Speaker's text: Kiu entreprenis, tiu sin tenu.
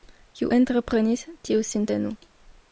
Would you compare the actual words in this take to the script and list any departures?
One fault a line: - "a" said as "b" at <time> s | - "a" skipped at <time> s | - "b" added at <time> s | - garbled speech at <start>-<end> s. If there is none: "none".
none